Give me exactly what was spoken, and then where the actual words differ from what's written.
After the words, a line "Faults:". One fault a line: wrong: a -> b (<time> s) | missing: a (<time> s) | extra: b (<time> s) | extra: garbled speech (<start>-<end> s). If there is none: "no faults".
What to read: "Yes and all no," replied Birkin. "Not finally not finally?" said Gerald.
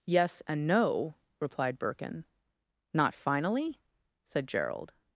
"Yes and no," replied Birkin. "Not finally?" said Gerald.
Faults:
missing: all (0.7 s)
missing: not finally (3.8 s)